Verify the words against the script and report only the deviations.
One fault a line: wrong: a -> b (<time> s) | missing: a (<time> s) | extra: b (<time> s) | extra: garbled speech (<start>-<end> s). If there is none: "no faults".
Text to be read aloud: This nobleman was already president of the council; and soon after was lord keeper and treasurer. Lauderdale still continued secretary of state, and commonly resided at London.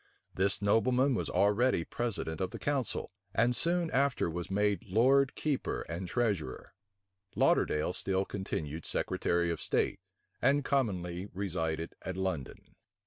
extra: made (4.5 s)